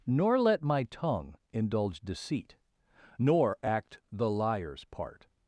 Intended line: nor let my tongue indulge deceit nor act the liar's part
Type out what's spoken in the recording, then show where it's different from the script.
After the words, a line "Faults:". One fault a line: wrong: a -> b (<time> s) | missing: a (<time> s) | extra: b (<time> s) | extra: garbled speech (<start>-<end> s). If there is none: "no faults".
nor let my tongue indulge deceit nor act the liar's part
Faults:
no faults